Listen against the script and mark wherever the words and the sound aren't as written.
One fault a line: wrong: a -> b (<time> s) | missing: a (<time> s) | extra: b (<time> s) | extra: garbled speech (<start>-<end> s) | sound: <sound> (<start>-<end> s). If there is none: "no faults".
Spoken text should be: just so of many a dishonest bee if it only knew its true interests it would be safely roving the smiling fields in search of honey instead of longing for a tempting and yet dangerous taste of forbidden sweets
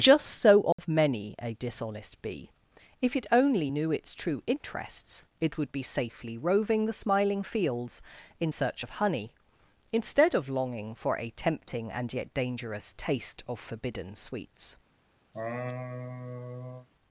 sound: dropout (0.7-0.8 s)
sound: laugh (15.3-16.9 s)